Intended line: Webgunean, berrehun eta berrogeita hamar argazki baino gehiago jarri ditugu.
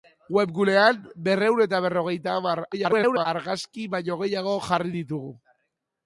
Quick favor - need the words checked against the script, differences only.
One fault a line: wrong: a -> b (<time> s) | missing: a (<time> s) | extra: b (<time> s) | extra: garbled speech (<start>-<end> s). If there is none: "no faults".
extra: garbled speech (2.7-3.3 s)